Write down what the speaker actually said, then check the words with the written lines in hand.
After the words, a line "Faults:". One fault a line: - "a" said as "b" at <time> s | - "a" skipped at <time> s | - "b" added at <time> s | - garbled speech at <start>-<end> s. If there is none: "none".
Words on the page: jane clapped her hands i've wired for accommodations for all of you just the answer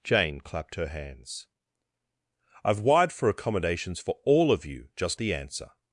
jane clapped her hands i've wired for accommodations for all of you just the answer
Faults:
none